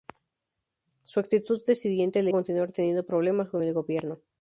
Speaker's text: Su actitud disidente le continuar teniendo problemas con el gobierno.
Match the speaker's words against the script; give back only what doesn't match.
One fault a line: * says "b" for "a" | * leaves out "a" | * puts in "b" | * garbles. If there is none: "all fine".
all fine